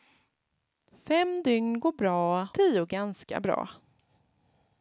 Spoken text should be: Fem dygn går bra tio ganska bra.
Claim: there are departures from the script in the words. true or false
false